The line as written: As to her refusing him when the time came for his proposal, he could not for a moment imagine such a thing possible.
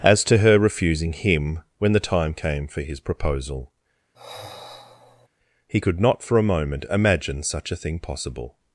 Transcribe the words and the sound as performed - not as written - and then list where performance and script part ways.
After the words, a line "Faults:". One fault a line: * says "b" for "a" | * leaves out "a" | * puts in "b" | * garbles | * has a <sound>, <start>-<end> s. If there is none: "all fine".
As to her refusing him when the time came for his proposal, he could not for a moment imagine such a thing possible.
Faults:
* has a sigh, 4.1-5.3 s